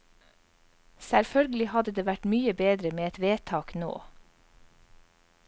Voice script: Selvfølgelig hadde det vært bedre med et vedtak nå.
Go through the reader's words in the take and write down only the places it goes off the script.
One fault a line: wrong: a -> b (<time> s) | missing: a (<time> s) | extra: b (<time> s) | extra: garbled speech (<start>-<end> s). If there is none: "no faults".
extra: mye (2.3 s)